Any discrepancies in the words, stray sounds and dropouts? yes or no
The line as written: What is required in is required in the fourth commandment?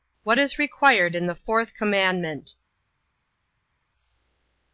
yes